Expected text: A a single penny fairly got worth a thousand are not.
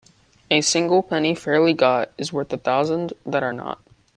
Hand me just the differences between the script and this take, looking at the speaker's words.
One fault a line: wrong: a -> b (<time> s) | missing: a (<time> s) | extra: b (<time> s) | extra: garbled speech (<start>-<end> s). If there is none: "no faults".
missing: a (0.6 s)
extra: is (2.2 s)
extra: that (3.2 s)